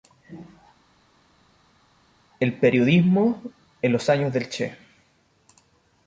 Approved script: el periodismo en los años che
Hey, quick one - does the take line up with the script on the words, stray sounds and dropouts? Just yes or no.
no